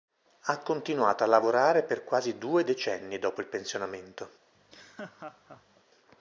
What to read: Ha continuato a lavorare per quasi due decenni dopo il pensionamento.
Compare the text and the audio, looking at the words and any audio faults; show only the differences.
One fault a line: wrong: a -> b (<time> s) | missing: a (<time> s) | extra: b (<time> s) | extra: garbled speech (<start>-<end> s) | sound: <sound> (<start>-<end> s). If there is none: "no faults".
sound: laugh (4.5-5.8 s)